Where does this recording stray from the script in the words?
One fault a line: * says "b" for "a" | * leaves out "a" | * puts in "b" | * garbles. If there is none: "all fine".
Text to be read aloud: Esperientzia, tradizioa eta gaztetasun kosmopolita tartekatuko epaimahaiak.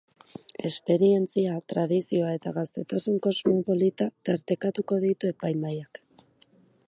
* puts in "ditu"